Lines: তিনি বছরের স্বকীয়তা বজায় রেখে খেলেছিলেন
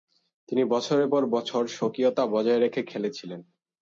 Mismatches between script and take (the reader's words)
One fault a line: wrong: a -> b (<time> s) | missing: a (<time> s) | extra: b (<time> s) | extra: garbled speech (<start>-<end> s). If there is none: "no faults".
extra: পর বছর (1.1 s)